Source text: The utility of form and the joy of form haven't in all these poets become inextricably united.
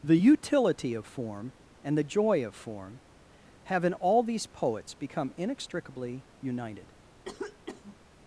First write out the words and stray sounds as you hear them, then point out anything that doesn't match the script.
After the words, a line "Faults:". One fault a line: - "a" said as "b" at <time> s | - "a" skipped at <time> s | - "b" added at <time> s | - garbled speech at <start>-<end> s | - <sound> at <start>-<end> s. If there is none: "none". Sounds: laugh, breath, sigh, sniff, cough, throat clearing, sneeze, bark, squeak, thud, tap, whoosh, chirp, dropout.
The utility of form and the joy of form have in all these poets become inextricably united.
Faults:
- "haven't" said as "have" at 3.6 s
- cough at 7.2-8.0 s